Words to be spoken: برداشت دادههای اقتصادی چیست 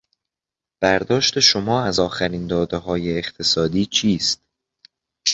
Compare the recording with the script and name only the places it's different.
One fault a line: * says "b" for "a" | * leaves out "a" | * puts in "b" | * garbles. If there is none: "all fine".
* puts in "شما از آخرین"